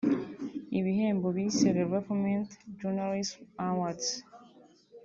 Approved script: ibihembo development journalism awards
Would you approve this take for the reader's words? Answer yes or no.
no